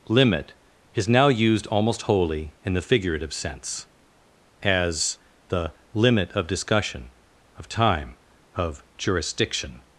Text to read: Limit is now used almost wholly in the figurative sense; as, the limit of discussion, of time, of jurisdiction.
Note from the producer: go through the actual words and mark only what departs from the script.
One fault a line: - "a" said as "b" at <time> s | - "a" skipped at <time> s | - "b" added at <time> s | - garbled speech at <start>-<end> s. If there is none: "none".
none